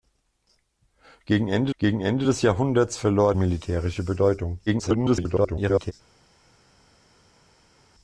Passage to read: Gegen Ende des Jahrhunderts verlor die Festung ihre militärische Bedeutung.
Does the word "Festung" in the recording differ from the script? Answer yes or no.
yes